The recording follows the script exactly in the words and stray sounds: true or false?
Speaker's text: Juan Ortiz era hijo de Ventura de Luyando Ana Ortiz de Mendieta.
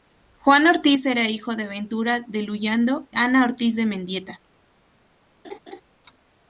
false